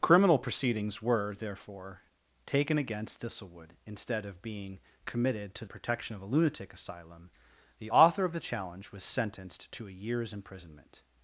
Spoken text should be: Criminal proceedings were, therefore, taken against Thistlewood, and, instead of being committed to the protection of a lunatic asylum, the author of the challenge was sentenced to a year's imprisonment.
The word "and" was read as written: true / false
false